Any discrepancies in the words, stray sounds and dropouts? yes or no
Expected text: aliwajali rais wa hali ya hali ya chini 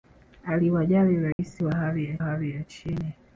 yes